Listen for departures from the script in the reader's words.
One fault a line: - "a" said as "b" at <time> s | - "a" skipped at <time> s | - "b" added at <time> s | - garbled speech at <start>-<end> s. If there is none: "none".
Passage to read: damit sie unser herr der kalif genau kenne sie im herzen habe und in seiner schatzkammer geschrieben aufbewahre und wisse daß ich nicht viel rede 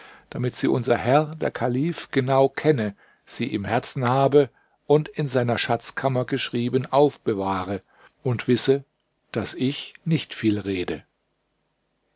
none